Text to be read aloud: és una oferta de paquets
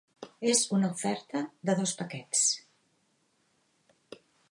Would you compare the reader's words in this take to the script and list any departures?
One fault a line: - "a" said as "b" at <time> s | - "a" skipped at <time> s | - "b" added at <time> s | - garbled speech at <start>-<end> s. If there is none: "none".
- "dos" added at 1.8 s